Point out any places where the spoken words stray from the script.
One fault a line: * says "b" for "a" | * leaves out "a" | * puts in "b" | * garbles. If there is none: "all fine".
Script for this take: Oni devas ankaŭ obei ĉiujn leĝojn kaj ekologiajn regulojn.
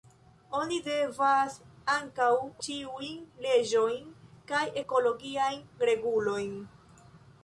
* leaves out "obei"